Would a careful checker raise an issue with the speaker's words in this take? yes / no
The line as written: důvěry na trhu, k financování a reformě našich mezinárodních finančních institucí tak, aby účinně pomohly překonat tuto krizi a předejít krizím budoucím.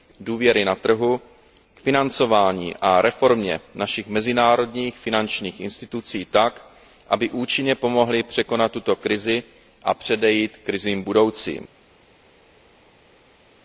no